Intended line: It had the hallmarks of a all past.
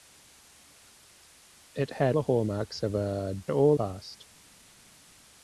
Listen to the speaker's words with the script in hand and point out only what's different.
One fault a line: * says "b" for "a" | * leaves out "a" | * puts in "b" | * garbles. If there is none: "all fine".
all fine